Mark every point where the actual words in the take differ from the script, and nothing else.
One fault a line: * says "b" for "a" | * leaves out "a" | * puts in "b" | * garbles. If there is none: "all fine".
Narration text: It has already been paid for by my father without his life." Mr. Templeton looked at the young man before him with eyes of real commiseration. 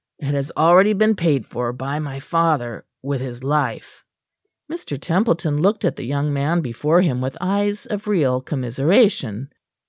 * says "with" for "without"